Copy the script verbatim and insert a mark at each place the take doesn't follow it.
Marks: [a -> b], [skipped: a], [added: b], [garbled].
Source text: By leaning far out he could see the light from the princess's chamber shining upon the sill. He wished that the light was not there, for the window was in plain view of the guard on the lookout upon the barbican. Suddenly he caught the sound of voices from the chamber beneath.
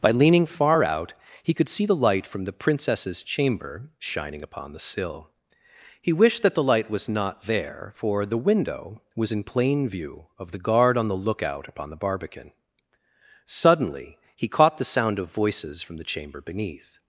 By leaning far out he could see the light from the princess's chamber shining upon the sill. He wished that the light was not there, for the window was in plain view of the guard on the lookout upon the barbican. Suddenly he caught the sound of voices from the chamber beneath.